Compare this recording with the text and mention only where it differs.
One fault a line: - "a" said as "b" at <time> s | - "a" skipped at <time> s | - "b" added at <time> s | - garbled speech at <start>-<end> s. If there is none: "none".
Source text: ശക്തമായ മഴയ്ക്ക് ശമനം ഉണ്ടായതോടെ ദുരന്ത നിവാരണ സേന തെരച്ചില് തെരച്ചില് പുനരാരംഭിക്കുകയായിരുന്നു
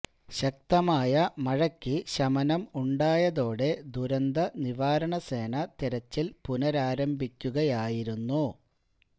- "തെരച്ചില്" skipped at 6.3 s